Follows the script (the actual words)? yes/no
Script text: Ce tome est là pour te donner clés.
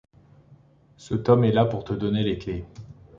no